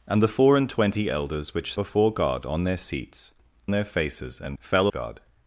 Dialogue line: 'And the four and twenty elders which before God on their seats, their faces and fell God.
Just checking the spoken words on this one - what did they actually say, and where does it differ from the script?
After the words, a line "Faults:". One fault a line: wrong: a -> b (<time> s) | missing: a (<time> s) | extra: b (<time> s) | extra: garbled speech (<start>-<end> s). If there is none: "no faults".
'And the four and twenty elders which before God on their seats, their faces and fell God.
Faults:
no faults